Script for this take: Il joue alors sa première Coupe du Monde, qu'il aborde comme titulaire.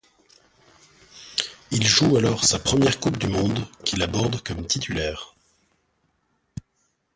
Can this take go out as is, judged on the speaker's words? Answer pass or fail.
pass